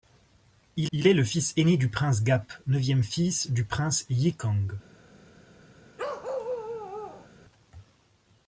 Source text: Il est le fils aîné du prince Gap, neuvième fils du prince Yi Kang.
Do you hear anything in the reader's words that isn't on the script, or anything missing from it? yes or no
yes